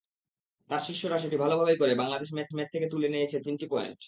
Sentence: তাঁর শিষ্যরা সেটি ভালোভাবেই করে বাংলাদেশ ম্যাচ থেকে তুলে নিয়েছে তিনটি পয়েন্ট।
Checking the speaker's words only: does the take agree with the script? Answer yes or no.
no